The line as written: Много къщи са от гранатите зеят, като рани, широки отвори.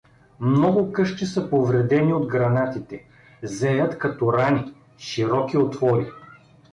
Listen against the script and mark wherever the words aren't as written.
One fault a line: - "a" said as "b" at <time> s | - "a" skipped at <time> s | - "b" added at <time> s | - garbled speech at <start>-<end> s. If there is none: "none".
- "повредени" added at 1.5 s